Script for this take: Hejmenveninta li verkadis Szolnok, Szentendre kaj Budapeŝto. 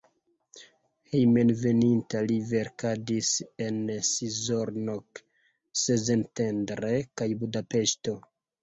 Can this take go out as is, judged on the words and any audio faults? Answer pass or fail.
fail